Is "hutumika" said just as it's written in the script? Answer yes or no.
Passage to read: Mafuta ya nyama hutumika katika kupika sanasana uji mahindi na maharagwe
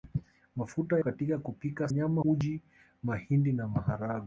no